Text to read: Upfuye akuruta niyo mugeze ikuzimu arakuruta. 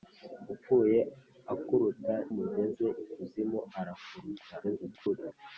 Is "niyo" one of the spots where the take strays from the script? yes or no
yes